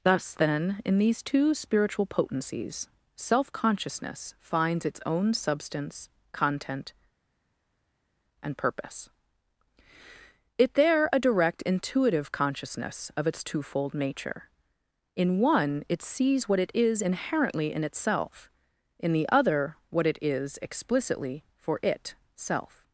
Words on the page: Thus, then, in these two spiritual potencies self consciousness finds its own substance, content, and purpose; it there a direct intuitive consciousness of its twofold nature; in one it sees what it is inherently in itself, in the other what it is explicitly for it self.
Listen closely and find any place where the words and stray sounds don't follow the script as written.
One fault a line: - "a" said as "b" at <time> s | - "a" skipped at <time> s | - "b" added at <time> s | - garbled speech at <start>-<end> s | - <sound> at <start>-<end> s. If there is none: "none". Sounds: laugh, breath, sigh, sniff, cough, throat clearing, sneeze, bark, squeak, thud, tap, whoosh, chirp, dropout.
none